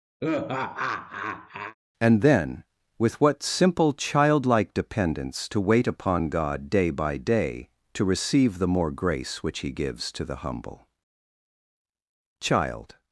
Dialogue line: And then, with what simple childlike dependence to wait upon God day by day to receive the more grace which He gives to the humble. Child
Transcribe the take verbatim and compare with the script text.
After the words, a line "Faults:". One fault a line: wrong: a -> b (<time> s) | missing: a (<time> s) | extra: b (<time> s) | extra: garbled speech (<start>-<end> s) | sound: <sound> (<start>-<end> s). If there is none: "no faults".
And then, with what simple childlike dependence to wait upon God day by day to receive the more grace which He gives to the humble. Child
Faults:
sound: laugh (0.2-1.7 s)